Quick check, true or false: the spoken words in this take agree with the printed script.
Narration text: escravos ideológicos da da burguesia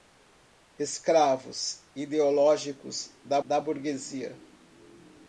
true